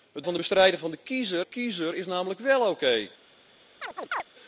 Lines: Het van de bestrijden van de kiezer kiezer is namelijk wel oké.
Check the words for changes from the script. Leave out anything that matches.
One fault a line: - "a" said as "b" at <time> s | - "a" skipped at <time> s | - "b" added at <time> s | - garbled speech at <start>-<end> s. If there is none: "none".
none